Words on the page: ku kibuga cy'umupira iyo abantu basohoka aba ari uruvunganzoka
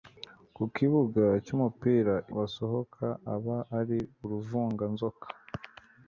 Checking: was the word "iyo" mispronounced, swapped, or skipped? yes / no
yes